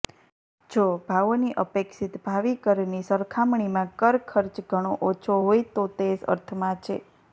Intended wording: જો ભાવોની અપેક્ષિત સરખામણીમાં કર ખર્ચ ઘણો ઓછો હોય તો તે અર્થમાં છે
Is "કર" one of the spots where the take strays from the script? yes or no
no